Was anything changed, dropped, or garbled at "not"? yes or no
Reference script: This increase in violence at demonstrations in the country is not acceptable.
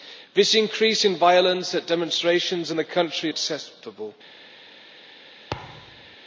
yes